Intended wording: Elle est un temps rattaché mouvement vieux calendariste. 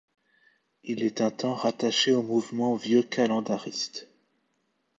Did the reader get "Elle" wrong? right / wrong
wrong